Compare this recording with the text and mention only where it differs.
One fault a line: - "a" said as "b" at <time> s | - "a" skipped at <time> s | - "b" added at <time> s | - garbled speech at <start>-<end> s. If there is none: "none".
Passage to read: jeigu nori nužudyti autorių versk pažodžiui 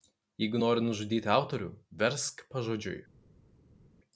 none